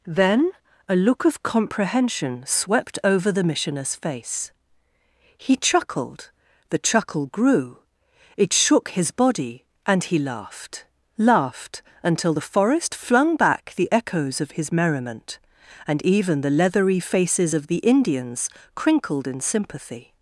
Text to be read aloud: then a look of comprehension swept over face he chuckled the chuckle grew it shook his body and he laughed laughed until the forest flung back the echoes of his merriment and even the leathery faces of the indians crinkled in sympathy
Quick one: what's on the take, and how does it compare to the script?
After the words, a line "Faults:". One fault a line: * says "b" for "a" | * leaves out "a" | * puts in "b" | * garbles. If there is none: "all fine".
then a look of comprehension swept over the missioner's face he chuckled the chuckle grew it shook his body and he laughed laughed until the forest flung back the echoes of his merriment and even the leathery faces of the indians crinkled in sympathy
Faults:
* puts in "the missioner's"